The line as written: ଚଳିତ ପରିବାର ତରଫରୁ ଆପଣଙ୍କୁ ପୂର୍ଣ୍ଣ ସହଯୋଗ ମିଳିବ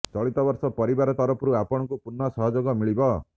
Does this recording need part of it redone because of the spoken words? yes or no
yes